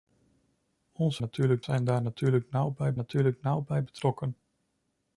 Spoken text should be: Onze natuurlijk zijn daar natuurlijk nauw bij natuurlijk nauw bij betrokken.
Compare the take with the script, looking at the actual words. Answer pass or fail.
pass